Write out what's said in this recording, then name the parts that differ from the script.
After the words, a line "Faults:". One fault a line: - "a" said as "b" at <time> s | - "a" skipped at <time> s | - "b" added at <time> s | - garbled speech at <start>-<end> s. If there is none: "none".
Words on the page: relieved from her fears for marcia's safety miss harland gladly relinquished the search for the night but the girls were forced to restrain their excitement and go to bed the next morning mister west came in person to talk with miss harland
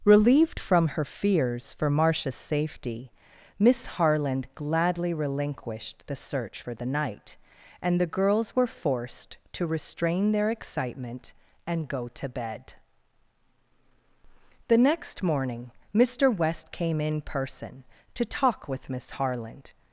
relieved from her fears for marcia's safety miss harland gladly relinquished the search for the night and the girls were forced to restrain their excitement and go to bed the next morning mister west came in person to talk with miss harland
Faults:
- "but" said as "and" at 7.8 s